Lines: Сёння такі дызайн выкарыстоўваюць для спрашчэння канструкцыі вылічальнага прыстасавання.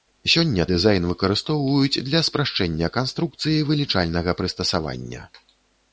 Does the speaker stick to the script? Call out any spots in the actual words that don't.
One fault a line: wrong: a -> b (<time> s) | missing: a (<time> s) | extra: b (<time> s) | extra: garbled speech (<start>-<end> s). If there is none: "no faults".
missing: такі (0.6 s)